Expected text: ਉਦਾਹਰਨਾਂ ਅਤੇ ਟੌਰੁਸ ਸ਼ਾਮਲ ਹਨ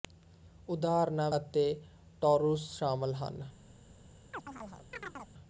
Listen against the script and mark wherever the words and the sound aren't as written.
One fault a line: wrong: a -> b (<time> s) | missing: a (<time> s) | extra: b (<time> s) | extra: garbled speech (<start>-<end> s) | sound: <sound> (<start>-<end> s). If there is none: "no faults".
sound: chirp (4.3-5.3 s)